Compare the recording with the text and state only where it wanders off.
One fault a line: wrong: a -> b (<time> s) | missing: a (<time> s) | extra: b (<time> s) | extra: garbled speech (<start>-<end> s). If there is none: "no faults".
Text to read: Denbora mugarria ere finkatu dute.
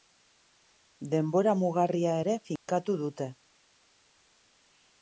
no faults